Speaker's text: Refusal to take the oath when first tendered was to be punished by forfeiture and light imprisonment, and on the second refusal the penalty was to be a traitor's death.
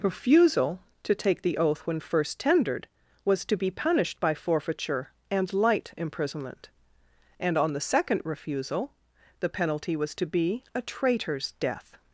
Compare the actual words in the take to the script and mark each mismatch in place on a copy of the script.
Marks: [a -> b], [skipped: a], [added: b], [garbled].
Refusal to take the oath when first tendered was to be punished by forfeiture and light imprisonment, and on the second refusal the penalty was to be a traitor's death.